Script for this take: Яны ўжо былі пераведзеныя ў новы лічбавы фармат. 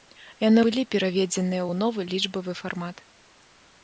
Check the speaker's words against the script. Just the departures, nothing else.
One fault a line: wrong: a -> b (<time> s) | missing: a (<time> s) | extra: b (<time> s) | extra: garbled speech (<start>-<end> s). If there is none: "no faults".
missing: ўжо (0.6 s)